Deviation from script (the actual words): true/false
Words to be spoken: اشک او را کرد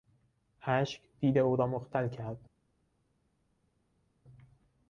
true